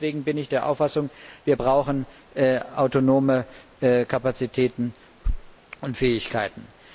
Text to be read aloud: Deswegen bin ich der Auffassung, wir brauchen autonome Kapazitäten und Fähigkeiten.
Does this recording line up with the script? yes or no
yes